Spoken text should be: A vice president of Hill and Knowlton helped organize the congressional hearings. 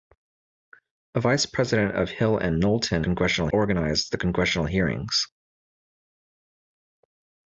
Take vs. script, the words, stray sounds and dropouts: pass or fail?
fail